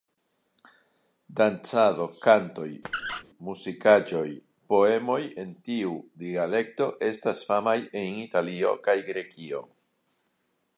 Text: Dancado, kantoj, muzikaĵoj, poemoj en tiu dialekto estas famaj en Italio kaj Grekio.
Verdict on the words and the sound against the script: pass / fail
fail